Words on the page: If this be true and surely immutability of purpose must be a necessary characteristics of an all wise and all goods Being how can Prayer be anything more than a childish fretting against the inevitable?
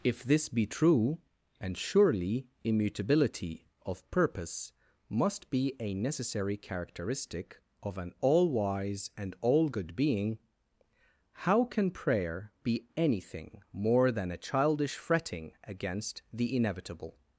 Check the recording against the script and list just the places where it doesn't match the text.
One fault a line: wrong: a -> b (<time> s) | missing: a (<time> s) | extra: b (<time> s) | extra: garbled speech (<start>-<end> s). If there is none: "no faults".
wrong: characteristics -> characteristic (6.6 s)
wrong: goods -> good (9.7 s)